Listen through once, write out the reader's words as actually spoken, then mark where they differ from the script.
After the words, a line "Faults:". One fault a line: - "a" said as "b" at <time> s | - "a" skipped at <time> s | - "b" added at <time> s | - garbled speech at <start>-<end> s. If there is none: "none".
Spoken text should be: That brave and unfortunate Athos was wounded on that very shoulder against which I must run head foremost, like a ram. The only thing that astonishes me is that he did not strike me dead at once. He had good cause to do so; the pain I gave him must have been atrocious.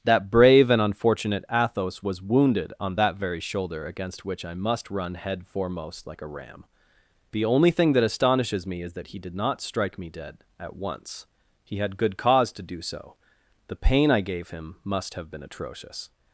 That brave and unfortunate Athos was wounded on that very shoulder against which I must run head foremost, like a ram. The only thing that astonishes me is that he did not strike me dead at once. He had good cause to do so; the pain I gave him must have been atrocious.
Faults:
none